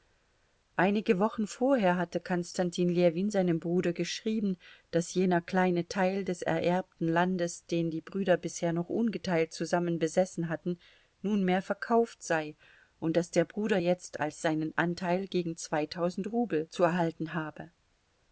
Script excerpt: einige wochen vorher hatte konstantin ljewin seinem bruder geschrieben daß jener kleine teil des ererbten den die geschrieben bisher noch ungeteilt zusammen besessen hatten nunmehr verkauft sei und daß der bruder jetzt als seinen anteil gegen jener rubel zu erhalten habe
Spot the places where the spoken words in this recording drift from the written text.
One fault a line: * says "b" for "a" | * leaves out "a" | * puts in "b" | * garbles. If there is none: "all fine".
* puts in "landes"
* says "brüder" for "geschrieben"
* says "zweitausend" for "jener"